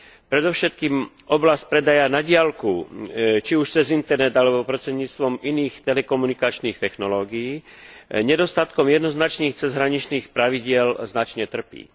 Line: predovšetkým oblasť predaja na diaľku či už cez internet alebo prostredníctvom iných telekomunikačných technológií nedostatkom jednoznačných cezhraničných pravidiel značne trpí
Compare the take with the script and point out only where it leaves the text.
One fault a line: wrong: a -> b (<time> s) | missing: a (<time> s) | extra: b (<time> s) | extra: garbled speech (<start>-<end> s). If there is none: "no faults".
no faults